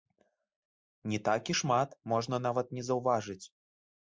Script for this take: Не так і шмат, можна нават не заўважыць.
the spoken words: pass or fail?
pass